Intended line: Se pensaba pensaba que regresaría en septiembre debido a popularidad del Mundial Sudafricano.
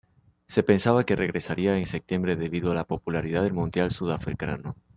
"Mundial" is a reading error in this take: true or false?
false